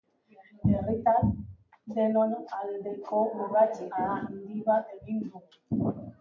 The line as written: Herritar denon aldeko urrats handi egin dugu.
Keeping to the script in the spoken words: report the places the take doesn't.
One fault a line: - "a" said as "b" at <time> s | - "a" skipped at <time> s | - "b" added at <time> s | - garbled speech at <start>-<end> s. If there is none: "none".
- "bat" added at 4.7 s